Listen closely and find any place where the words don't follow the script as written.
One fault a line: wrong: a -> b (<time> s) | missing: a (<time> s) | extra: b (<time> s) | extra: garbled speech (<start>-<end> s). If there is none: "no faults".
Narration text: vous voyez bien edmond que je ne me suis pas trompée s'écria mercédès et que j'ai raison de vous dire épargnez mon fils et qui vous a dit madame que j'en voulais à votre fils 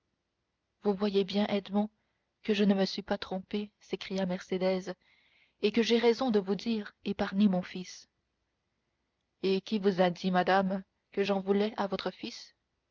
no faults